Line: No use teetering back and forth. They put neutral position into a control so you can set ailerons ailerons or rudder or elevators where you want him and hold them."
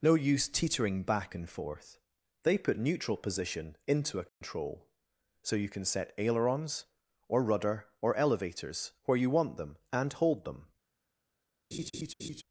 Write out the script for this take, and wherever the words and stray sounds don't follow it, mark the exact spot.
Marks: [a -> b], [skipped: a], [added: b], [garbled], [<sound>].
No use teetering back and forth. They put neutral position into a control [dropout] so you can set ailerons [skipped: ailerons] or rudder or elevators where you want [him -> them] and hold them." [laugh]